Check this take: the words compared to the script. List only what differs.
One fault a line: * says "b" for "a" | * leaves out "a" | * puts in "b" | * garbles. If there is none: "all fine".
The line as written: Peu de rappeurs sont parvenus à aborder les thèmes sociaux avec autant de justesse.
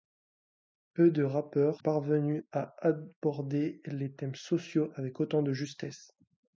* leaves out "sont"